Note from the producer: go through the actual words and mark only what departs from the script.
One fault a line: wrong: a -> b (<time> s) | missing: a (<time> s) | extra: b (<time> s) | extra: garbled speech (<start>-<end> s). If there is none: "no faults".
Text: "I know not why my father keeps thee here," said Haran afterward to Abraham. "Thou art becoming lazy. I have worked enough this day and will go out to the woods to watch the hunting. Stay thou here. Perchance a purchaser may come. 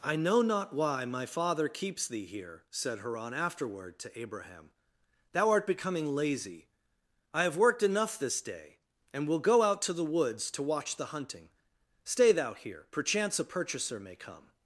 no faults